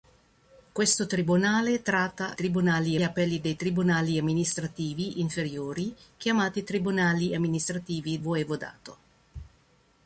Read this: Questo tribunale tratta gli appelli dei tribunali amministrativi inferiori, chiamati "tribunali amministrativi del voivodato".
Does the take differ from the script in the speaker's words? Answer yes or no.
yes